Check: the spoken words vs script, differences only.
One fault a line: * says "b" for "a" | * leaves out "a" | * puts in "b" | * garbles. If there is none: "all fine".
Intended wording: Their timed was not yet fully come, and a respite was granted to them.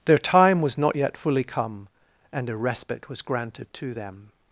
* says "time" for "timed"